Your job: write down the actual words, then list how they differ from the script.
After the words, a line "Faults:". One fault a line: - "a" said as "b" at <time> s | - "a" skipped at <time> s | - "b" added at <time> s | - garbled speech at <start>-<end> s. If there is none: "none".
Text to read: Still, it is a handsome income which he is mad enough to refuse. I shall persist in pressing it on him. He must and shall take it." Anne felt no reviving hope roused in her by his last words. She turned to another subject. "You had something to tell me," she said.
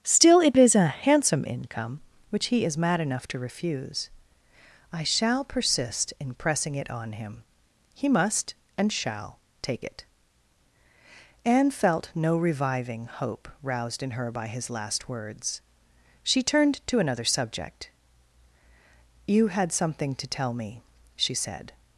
Still, it is a handsome income which he is mad enough to refuse. I shall persist in pressing it on him. He must and shall take it." Anne felt no reviving hope roused in her by his last words. She turned to another subject. "You had something to tell me," she said.
Faults:
none